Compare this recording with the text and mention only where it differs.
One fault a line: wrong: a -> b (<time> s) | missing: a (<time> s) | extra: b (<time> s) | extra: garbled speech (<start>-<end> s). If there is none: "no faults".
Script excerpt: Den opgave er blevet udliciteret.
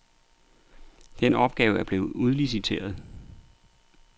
no faults